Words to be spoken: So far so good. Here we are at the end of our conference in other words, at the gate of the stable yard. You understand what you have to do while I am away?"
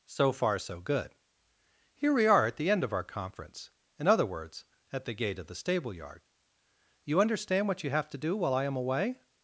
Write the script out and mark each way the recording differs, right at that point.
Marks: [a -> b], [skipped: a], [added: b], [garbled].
So far so good. Here we are at the end of our conference in other words, at the gate of the stable yard. You understand what you have to do while I am away?"